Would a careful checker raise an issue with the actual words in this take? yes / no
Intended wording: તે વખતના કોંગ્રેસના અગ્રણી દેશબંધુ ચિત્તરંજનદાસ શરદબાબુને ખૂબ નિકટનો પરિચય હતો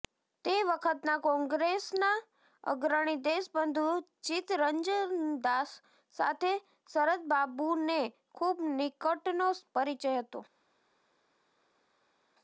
yes